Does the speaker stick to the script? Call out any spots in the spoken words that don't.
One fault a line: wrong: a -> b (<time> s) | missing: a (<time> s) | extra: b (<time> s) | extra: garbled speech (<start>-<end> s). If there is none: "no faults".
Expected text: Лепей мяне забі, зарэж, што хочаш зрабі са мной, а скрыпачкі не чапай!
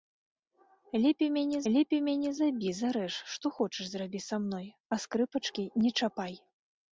extra: лепей мяне (1.7 s)